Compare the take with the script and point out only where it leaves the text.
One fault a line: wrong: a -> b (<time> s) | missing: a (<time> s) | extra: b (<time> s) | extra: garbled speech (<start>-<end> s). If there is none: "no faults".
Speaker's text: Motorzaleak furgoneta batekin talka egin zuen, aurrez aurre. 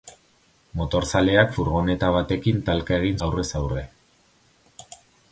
missing: zuen (3.2 s)